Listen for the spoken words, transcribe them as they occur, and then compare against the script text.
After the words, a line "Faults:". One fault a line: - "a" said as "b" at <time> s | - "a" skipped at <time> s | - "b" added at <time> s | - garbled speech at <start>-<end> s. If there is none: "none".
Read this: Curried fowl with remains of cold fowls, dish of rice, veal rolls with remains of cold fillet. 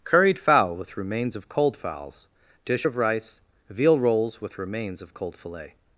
Curried fowl with remains of cold fowls, dish of rice, veal rolls with remains of cold fillet.
Faults:
none